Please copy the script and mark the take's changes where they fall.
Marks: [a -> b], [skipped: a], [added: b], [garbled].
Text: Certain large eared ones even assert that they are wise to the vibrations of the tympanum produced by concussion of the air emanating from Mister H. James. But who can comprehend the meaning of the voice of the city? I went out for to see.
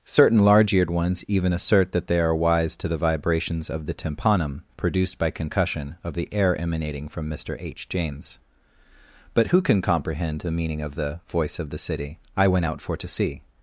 Certain large eared ones even assert that they are wise to the vibrations of the tympanum produced by concussion of the air emanating from Mister H. James. But who can comprehend the meaning of the voice of the city? I went out for to see.